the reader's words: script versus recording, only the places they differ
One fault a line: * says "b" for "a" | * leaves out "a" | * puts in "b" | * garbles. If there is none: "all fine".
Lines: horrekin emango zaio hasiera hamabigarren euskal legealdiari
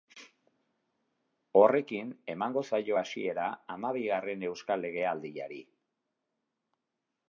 all fine